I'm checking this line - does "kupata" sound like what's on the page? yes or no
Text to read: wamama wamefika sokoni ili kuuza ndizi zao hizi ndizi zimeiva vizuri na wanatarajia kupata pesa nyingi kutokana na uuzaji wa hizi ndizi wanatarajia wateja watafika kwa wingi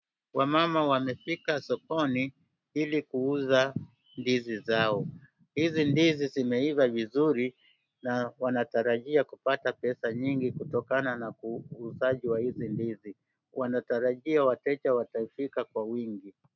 yes